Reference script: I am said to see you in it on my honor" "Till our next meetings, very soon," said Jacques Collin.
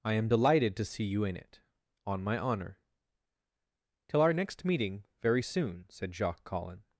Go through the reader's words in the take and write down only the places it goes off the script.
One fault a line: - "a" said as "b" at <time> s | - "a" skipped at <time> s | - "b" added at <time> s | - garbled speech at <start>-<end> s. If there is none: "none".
- "said" said as "delighted" at 0.3 s
- "meetings" said as "meeting" at 4.6 s